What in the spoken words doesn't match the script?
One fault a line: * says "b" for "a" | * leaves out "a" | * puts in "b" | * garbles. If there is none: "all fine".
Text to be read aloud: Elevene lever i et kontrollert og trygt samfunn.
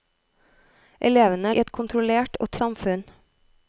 * leaves out "lever"
* leaves out "trygt"